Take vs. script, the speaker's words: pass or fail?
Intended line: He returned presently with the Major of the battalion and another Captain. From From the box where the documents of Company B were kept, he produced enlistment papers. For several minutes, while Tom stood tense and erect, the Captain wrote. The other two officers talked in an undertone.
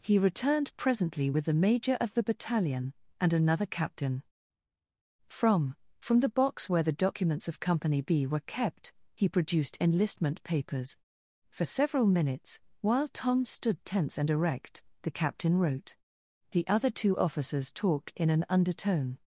pass